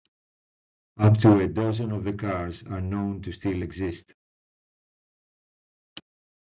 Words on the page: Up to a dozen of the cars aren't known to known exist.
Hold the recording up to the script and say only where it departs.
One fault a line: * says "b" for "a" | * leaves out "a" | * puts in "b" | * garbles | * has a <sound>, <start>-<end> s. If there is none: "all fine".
* says "are" for "aren't"
* says "still" for "known"